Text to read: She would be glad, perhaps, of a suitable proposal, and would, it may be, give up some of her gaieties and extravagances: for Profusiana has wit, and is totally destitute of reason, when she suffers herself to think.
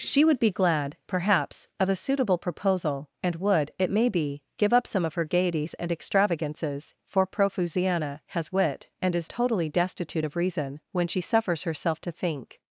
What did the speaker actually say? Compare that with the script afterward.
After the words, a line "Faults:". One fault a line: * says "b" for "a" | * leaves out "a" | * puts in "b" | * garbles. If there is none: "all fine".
She would be glad, perhaps, of a suitable proposal, and would, it may be, give up some of her gaieties and extravagances: for Profusiana has wit, and is totally destitute of reason, when she suffers herself to think.
Faults:
all fine